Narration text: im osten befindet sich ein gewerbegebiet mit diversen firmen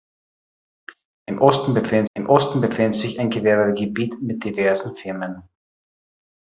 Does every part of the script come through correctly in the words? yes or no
no